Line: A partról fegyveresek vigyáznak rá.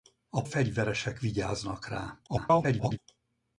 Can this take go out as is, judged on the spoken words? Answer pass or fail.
fail